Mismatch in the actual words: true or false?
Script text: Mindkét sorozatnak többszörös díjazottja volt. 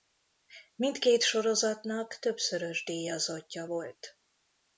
false